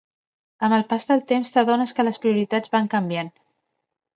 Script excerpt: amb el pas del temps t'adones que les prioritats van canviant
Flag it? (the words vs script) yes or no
no